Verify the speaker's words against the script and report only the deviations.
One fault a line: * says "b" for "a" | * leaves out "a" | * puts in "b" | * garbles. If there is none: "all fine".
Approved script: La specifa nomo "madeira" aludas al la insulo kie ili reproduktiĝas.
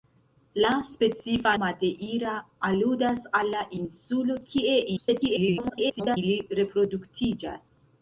* leaves out "nomo"
* garbles